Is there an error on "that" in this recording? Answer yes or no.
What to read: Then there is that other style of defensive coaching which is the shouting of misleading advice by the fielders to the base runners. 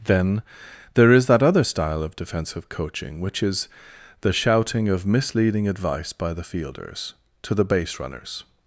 no